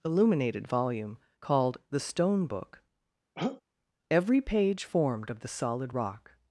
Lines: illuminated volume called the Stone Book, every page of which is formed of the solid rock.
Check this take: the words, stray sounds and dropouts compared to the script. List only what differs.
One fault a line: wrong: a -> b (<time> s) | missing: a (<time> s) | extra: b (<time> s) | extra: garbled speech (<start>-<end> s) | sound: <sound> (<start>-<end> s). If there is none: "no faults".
sound: throat clearing (3.4-3.6 s)
missing: of which is (4.8 s)